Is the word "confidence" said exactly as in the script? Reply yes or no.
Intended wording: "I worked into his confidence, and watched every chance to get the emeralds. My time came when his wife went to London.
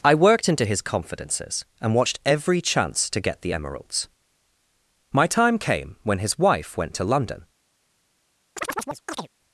no